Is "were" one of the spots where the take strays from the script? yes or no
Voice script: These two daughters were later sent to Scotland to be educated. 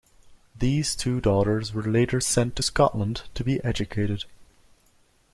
no